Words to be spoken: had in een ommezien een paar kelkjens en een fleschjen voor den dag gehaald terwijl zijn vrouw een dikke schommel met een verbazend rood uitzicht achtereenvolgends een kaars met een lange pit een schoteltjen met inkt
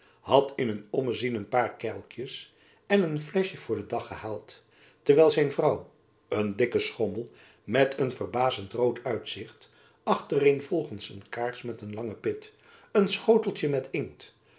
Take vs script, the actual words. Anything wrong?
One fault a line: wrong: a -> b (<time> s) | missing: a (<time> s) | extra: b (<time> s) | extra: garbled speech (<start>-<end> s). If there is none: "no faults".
no faults